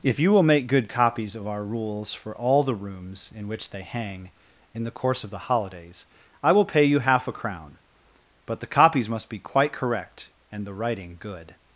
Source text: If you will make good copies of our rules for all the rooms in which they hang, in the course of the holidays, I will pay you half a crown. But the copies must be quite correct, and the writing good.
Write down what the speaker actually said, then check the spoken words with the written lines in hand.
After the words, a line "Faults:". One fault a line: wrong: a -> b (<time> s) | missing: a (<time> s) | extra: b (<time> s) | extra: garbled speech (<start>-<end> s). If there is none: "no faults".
If you will make good copies of our rules for all the rooms in which they hang, in the course of the holidays, I will pay you half a crown. But the copies must be quite correct, and the writing good.
Faults:
no faults